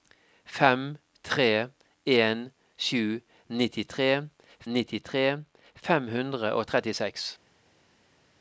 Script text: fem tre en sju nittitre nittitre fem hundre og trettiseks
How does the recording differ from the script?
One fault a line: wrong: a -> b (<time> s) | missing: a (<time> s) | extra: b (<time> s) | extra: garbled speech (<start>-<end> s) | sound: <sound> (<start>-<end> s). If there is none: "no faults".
no faults